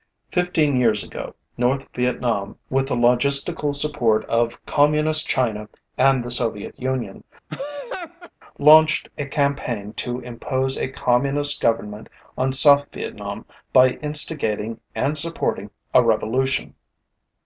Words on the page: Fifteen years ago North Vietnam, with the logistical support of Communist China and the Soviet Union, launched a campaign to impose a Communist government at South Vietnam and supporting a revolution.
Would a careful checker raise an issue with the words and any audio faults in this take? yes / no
yes